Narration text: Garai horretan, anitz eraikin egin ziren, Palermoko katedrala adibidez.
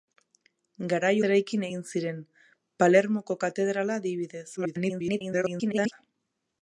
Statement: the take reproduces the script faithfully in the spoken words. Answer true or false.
false